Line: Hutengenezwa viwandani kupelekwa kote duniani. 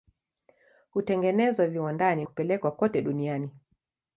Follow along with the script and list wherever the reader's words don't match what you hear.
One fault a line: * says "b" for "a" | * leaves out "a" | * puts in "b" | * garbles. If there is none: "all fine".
all fine